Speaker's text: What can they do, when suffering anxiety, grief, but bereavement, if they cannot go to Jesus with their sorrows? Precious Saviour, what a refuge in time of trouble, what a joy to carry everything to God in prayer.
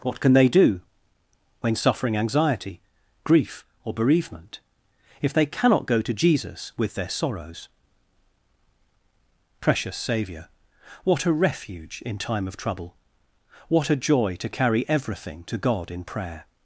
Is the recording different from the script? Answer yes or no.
yes